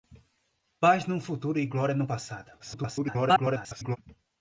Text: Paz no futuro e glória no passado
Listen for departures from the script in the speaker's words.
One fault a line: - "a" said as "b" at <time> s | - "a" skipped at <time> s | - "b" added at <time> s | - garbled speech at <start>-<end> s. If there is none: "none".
- garbled speech at 2.6-4.0 s